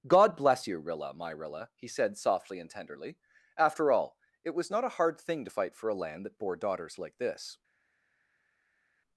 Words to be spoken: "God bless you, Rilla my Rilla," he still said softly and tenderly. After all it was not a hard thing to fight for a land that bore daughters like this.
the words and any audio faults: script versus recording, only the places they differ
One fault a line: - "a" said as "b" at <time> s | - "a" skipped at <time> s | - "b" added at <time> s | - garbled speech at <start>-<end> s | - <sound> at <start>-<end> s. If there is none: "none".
- "still" skipped at 1.9 s